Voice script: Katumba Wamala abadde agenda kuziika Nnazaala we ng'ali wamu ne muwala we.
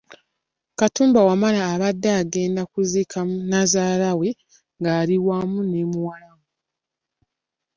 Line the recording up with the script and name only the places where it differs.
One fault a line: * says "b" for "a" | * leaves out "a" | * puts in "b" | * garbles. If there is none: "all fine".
all fine